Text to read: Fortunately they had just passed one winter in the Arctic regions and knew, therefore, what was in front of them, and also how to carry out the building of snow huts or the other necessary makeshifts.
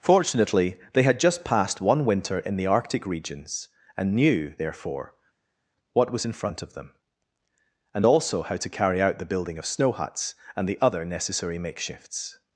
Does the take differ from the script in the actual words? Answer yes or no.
yes